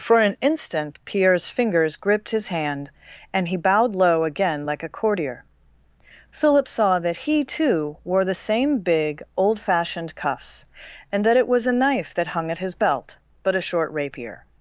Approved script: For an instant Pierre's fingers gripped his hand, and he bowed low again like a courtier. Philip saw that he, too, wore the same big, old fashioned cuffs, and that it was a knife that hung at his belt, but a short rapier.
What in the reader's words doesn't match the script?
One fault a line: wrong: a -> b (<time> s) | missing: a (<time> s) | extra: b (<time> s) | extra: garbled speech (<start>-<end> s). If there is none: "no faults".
no faults